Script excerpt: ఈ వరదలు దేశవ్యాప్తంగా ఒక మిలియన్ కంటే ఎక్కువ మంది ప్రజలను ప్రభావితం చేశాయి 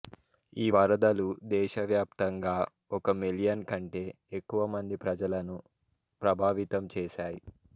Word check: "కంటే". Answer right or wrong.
right